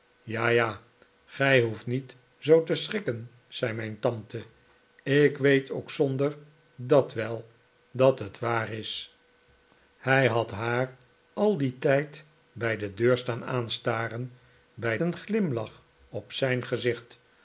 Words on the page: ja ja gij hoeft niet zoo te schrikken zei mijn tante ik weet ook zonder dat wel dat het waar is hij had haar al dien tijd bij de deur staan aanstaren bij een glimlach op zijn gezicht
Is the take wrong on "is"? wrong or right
right